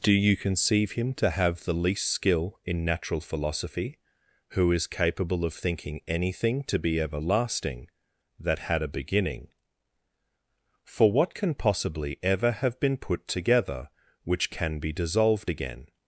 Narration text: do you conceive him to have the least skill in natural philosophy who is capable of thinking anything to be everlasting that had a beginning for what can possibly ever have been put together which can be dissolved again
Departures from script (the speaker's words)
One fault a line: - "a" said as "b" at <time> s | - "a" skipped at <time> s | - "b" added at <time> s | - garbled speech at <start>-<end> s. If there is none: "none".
none